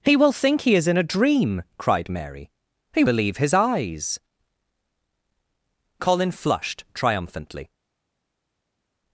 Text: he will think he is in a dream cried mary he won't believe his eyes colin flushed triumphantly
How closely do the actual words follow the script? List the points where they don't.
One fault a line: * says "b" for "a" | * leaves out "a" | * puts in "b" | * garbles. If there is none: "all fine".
* leaves out "won't"